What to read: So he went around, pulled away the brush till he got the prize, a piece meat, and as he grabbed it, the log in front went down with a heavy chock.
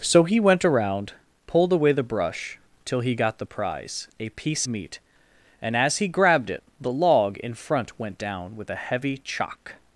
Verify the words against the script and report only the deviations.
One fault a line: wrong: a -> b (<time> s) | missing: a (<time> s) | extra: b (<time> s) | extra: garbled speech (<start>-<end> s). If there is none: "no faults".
no faults